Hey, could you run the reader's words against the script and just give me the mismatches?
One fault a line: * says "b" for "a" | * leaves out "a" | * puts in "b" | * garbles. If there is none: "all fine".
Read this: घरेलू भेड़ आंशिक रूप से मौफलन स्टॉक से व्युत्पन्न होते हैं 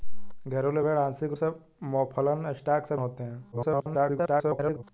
* leaves out "रूप"
* leaves out "व्युत्पन्न"
* garbles